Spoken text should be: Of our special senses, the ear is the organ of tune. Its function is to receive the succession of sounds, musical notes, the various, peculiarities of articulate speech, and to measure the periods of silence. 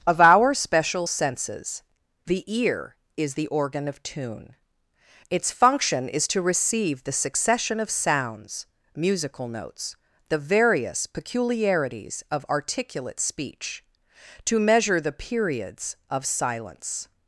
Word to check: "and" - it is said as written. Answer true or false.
false